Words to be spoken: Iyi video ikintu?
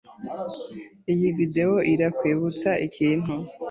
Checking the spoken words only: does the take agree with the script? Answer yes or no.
no